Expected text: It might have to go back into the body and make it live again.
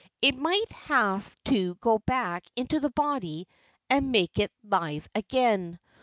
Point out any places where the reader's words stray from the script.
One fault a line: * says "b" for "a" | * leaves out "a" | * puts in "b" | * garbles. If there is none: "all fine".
all fine